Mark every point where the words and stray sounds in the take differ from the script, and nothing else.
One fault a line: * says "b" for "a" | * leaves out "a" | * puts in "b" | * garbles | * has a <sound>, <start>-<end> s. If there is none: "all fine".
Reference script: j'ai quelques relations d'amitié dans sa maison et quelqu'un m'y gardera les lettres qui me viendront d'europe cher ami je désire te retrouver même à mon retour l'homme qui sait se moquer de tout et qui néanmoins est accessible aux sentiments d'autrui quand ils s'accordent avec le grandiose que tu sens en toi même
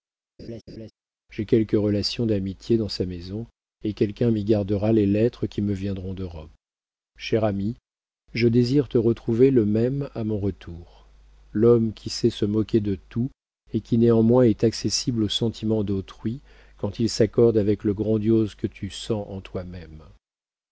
* has a laugh, 0.4-0.9 s
* puts in "le"